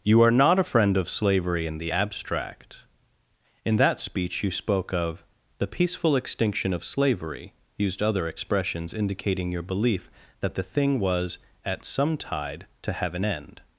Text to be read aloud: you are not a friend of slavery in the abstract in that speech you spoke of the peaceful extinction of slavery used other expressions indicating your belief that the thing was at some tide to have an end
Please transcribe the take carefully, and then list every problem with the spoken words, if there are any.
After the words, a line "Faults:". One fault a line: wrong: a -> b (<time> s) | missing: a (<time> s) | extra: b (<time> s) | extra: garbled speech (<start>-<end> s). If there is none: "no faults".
you are not a friend of slavery in the abstract in that speech you spoke of the peaceful extinction of slavery used other expressions indicating your belief that the thing was at some tide to have an end
Faults:
no faults